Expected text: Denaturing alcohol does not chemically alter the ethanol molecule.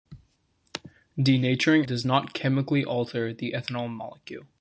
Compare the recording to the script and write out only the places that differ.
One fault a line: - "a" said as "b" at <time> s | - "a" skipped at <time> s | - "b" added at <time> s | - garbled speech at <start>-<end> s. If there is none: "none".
- "alcohol" skipped at 1.9 s